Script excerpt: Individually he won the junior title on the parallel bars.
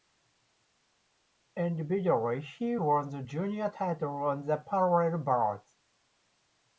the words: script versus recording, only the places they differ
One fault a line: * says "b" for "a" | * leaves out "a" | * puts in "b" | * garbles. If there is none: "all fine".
all fine